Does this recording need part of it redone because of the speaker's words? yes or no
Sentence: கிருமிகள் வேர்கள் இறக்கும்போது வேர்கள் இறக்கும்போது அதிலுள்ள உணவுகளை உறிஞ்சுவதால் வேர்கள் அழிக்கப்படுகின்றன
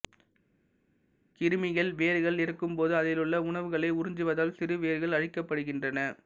yes